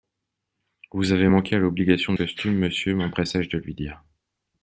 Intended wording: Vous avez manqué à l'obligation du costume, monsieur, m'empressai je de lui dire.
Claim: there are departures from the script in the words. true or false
true